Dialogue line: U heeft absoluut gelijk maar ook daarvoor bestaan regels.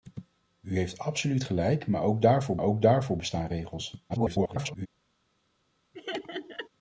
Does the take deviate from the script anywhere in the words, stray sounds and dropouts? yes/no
yes